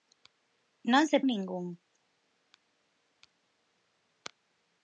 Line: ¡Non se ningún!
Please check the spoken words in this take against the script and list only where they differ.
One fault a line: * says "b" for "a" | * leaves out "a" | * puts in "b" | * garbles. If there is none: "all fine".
all fine